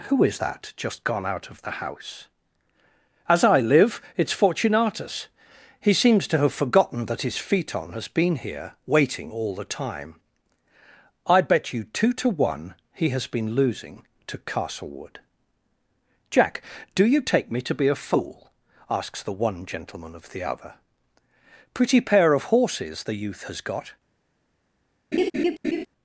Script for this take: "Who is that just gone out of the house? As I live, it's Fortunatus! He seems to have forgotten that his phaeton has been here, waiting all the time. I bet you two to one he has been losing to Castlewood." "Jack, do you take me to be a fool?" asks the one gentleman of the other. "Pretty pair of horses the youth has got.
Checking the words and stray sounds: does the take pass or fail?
fail